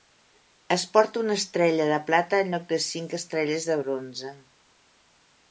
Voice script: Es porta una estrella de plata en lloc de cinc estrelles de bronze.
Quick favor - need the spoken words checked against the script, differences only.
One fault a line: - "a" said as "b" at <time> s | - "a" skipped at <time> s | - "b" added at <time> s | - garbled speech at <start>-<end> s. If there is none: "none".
none